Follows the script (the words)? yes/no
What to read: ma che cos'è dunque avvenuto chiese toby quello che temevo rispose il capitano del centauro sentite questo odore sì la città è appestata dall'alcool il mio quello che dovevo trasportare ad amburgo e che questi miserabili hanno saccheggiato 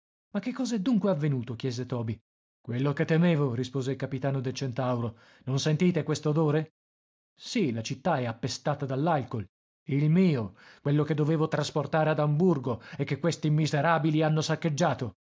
no